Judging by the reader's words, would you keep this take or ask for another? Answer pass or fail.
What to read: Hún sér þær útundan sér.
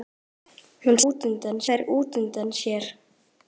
fail